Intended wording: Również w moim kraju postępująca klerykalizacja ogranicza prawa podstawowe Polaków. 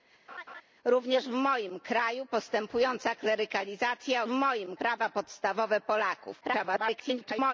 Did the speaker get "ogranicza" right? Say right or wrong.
wrong